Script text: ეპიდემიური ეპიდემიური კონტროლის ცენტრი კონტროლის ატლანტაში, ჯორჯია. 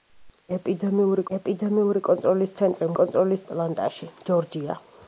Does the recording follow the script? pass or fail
pass